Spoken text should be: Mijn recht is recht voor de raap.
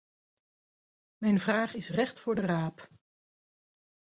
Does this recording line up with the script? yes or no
no